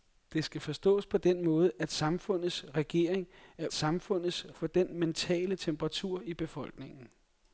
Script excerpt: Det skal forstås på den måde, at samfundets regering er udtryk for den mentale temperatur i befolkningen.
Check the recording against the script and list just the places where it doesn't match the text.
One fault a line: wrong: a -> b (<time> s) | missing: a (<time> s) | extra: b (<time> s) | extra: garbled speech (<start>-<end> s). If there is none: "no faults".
wrong: udtryk -> samfundets (3.7 s)